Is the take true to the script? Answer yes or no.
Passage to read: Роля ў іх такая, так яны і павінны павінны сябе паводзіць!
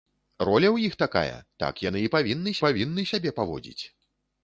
yes